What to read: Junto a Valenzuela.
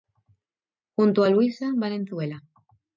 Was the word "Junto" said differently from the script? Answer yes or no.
no